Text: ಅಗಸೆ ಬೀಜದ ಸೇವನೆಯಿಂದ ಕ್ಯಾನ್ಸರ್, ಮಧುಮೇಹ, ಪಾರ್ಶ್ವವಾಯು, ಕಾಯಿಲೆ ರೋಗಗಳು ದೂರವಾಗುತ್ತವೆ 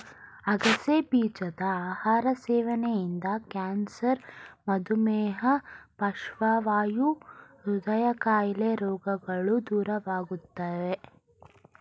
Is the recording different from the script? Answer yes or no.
yes